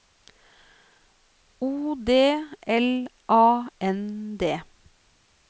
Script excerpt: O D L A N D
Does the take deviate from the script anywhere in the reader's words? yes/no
no